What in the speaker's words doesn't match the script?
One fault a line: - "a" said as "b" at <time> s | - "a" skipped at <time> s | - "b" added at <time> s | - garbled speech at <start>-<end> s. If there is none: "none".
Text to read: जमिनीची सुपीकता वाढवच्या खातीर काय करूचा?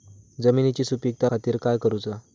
- "वाढवच्या" skipped at 1.3 s